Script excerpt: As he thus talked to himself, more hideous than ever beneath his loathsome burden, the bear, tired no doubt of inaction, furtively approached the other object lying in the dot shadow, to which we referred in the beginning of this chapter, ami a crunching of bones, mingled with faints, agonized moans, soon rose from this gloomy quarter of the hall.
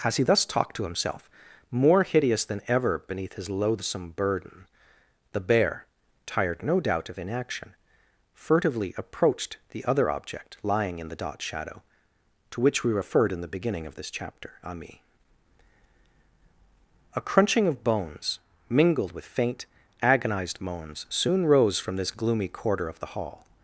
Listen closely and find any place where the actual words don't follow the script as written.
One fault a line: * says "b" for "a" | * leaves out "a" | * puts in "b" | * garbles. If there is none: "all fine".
* says "faint" for "faints"